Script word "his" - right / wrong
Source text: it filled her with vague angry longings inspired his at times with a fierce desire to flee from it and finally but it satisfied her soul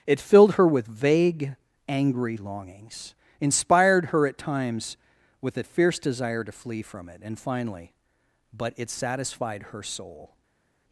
wrong